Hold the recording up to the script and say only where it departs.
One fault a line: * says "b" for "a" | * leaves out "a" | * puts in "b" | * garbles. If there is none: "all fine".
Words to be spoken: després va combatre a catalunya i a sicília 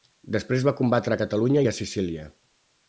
all fine